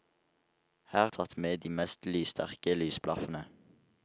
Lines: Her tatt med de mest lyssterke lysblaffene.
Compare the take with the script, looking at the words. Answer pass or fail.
pass